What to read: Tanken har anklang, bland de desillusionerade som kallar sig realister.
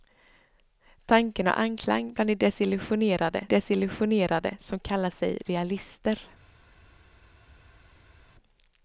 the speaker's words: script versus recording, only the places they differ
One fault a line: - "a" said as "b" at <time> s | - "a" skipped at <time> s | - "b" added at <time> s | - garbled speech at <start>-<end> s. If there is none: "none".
- "desillusionerade" added at 3.4 s